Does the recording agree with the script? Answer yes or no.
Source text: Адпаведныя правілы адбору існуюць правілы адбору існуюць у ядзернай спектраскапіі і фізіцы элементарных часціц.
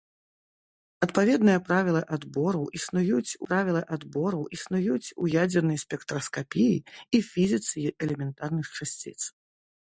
yes